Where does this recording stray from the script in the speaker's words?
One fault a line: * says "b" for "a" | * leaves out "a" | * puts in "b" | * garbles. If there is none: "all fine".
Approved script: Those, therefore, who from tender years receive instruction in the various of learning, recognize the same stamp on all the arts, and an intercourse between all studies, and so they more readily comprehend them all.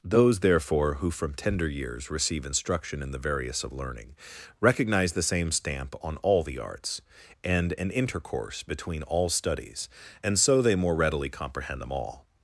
all fine